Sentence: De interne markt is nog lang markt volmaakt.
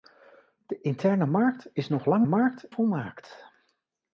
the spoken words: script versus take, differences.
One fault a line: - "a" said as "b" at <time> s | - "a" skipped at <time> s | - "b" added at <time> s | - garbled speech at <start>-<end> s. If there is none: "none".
none